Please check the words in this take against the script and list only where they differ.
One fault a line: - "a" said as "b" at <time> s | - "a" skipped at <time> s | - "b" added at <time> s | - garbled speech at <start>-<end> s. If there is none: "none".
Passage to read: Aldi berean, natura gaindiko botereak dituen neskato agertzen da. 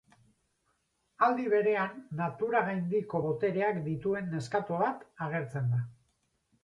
- "bat" added at 4.9 s